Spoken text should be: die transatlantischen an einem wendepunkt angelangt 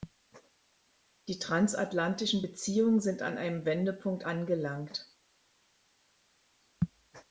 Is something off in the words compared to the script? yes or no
yes